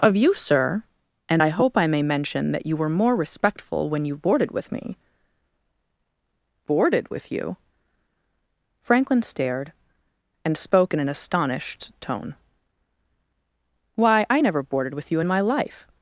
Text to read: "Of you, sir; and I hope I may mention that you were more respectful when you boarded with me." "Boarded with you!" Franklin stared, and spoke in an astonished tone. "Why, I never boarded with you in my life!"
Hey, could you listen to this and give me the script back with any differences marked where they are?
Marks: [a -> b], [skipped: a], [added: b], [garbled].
"Of you, sir; and I hope I may mention that you were more respectful when you boarded with me." "Boarded with you!" Franklin stared, and spoke in an astonished tone. "Why, I never boarded with you in my life!"